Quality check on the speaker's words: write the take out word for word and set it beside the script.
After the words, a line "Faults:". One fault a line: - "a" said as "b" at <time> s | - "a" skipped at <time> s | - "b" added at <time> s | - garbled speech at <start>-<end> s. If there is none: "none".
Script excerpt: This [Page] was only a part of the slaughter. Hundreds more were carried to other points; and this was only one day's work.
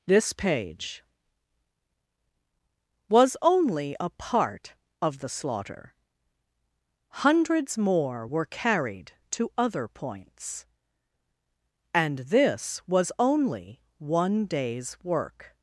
This [Page] was only a part of the slaughter. Hundreds more were carried to other points; and this was only one day's work.
Faults:
none